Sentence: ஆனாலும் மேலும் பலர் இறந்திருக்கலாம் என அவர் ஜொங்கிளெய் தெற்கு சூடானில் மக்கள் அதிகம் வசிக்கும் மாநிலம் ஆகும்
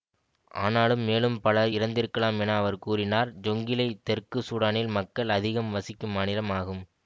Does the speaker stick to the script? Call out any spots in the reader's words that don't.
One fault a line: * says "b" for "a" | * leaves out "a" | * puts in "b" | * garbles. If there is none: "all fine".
* puts in "கூறினார்"